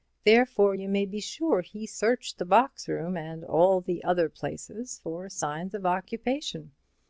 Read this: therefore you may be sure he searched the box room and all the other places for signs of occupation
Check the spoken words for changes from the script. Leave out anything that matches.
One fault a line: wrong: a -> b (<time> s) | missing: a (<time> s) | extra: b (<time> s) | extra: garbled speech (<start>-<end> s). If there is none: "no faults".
no faults